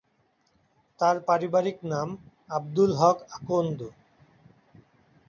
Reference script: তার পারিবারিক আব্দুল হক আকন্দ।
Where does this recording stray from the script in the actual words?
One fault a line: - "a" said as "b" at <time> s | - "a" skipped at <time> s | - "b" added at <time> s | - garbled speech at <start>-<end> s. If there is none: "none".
- "নাম" added at 1.9 s